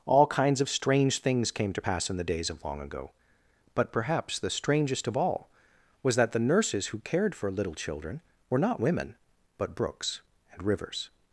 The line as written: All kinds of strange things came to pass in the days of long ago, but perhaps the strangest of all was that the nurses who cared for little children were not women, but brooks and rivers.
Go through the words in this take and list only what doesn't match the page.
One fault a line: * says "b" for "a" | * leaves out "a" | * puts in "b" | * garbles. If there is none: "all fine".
all fine